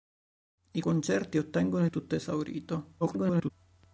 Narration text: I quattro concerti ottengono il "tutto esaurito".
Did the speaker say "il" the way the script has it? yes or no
no